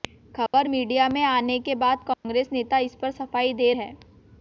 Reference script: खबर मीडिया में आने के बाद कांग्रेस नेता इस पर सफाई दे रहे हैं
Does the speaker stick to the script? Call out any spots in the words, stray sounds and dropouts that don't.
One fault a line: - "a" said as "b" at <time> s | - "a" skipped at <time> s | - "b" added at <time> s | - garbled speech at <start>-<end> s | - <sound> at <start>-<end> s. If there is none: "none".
- dropout at 0.5-0.5 s
- dropout at 2.1-2.2 s
- "रहे" skipped at 3.7 s